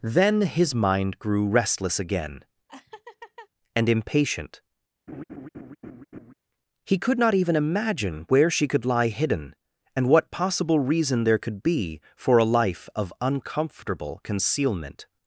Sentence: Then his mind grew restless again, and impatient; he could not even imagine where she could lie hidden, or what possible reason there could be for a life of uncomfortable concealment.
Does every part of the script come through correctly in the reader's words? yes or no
no